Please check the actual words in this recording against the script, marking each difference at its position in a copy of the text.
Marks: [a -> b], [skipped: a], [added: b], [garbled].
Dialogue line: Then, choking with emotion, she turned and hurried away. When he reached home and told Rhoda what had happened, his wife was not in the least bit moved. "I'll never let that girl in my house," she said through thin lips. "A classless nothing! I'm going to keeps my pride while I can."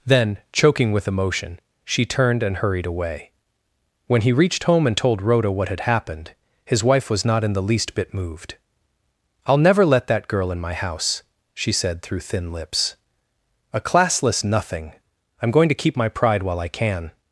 Then, choking with emotion, she turned and hurried away. When he reached home and told Rhoda what had happened, his wife was not in the least bit moved. "I'll never let that girl in my house," she said through thin lips. "A classless nothing! I'm going to [keeps -> keep] my pride while I can."